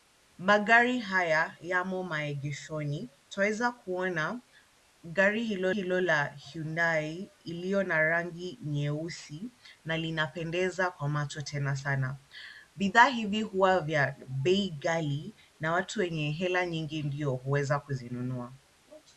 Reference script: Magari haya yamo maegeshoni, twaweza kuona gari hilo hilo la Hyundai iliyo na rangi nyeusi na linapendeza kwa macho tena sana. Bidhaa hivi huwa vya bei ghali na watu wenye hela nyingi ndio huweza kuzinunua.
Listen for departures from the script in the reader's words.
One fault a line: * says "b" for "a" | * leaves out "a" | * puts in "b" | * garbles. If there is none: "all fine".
all fine